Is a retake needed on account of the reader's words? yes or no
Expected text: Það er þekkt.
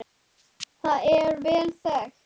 yes